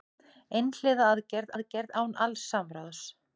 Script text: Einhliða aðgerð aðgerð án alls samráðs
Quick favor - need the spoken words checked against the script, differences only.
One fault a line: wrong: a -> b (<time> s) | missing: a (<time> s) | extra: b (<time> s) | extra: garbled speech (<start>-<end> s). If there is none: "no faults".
no faults